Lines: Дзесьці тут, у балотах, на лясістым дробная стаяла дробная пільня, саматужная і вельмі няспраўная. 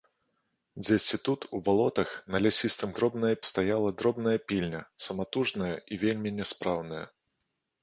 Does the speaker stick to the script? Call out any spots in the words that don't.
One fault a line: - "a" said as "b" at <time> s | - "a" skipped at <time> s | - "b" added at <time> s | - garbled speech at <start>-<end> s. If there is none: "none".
none